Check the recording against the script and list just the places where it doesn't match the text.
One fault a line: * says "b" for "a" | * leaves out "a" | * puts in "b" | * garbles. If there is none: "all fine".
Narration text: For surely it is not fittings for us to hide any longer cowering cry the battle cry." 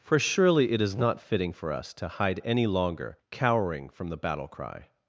* says "fitting" for "fittings"
* says "from" for "cry"